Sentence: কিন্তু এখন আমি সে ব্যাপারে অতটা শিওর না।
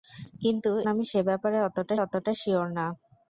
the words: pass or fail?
fail